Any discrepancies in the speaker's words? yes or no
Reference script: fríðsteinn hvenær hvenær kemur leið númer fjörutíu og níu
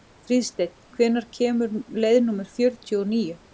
yes